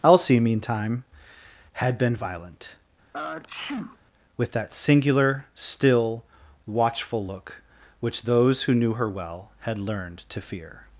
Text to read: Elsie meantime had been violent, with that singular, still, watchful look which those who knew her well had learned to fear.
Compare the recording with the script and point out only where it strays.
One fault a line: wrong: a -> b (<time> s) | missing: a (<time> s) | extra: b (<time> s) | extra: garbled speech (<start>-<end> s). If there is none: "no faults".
no faults